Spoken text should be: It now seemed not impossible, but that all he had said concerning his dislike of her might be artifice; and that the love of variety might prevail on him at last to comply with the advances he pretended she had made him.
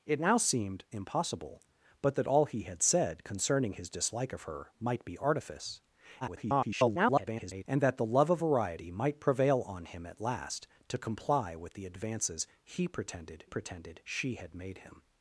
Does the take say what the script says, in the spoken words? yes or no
no